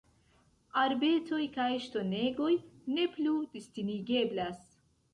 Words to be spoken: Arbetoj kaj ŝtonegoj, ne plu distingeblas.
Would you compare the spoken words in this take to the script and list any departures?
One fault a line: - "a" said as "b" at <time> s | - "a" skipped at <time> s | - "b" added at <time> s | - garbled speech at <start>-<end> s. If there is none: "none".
none